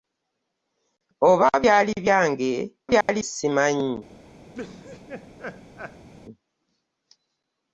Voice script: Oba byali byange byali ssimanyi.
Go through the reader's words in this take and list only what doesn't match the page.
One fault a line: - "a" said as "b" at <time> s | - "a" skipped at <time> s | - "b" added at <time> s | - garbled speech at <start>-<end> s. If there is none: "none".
none